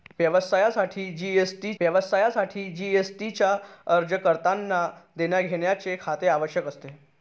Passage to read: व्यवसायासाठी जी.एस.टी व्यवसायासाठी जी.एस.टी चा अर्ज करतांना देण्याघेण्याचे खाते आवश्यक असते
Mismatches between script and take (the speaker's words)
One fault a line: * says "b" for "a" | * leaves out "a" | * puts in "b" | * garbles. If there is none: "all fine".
all fine